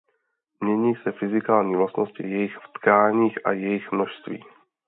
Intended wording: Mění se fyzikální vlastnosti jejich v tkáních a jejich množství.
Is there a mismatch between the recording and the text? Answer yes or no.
no